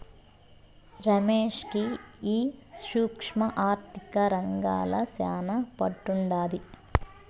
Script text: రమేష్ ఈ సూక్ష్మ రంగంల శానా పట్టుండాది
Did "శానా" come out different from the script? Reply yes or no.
no